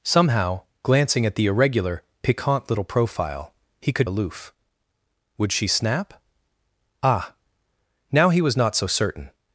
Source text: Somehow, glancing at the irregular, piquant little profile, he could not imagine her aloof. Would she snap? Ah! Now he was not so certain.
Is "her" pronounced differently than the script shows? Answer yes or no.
yes